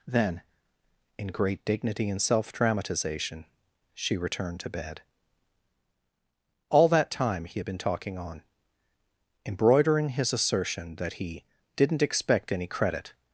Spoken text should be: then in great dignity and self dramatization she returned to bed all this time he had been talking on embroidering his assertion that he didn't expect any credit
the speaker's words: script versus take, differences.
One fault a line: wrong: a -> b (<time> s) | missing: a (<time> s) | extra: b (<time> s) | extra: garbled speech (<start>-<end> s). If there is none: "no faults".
wrong: this -> that (6.9 s)